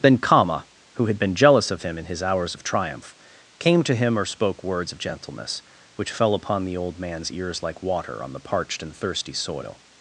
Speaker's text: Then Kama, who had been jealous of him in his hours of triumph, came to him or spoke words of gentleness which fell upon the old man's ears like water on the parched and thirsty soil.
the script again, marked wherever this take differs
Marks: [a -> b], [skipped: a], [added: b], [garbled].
Then Kama, who had been jealous of him in his hours of triumph, came to him or spoke words of gentleness which fell upon the old man's ears like water on the parched and thirsty soil.